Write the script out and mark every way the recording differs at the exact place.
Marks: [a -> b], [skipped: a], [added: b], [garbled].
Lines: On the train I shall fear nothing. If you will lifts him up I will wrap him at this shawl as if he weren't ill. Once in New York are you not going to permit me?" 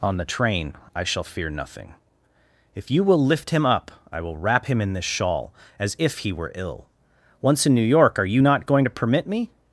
On the train I shall fear nothing. If you will [lifts -> lift] him up I will wrap him [at -> in] this shawl as if he [weren't -> were] ill. Once in New York are you not going to permit me?"